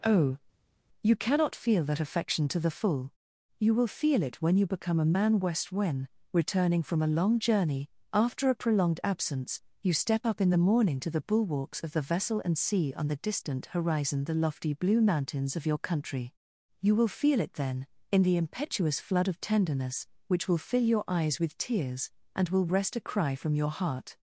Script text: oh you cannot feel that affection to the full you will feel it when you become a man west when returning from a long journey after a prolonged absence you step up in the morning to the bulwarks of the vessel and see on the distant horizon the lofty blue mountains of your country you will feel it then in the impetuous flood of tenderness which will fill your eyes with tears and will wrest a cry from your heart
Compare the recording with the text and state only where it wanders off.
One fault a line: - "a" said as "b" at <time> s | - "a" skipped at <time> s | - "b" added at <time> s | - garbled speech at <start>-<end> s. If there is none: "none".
none